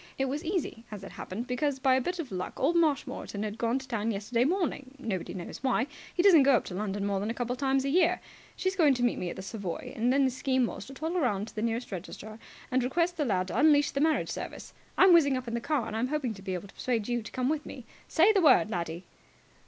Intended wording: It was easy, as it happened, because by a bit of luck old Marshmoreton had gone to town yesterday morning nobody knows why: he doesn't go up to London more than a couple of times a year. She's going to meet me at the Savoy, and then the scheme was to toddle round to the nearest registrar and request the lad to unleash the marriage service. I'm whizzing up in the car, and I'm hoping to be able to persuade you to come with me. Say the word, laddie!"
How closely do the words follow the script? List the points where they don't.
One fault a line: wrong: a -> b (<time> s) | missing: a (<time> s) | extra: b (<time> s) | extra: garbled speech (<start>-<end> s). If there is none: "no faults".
no faults